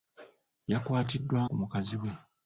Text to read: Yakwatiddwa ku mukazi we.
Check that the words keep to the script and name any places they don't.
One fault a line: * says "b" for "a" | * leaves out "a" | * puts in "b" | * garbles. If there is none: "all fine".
all fine